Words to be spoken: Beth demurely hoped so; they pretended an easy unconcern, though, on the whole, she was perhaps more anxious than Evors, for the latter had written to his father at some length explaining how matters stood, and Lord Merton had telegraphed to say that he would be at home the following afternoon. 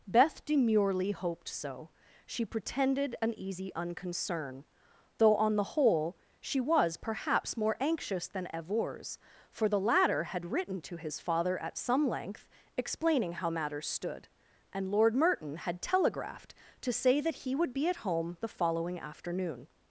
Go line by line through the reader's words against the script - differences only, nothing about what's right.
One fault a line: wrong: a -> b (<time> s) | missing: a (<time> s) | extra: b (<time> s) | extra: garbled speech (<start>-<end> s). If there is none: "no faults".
wrong: they -> she (2.2 s)